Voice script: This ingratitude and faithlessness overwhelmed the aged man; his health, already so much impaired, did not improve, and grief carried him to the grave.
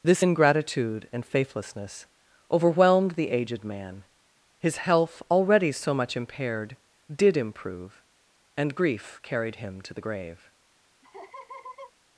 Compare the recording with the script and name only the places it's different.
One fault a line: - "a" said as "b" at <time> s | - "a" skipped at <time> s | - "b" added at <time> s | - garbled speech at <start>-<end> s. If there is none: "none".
- "not" skipped at 7.4 s